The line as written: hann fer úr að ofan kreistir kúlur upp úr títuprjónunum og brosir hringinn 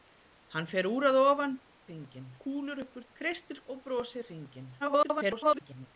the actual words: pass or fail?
fail